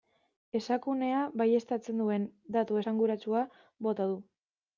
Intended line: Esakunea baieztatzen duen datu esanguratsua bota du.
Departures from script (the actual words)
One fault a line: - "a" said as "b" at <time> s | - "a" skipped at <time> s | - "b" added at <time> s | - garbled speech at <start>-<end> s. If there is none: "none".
none